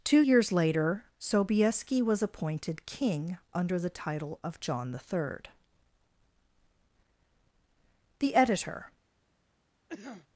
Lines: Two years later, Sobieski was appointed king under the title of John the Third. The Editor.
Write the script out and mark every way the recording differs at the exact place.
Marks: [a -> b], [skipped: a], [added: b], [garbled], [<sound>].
Two years later, Sobieski was appointed king under the title of John the Third. The Editor. [cough]